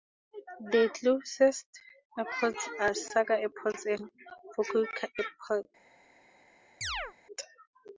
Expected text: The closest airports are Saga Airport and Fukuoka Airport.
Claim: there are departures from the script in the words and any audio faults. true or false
true